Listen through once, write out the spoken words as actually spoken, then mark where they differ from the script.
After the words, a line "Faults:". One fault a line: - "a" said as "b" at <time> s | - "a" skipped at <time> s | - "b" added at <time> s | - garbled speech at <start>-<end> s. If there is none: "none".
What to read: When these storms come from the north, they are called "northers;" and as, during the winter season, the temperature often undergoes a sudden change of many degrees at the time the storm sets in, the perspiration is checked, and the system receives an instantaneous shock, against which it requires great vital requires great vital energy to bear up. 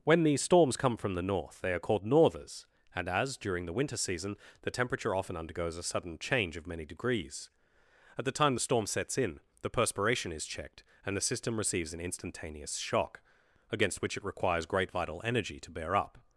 When these storms come from the north, they are called "northers;" and as, during the winter season, the temperature often undergoes a sudden change of many degrees at the time the storm sets in, the perspiration is checked, and the system receives an instantaneous shock, against which it requires great vital energy to bear up.
Faults:
- "requires great vital" skipped at 15.2 s